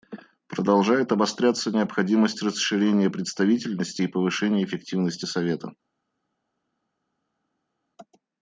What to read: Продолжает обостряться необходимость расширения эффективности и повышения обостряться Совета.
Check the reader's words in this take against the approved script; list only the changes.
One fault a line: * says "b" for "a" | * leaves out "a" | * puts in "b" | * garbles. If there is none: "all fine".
* says "представительности" for "эффективности"
* says "эффективности" for "обостряться"